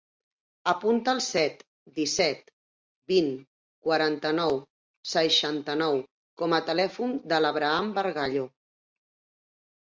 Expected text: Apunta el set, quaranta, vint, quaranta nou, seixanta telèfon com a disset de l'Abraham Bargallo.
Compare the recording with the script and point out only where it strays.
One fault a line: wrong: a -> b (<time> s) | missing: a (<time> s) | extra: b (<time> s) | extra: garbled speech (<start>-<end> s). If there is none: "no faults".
wrong: quaranta -> disset (2.0 s)
wrong: telèfon -> nou (5.8 s)
wrong: disset -> telèfon (6.7 s)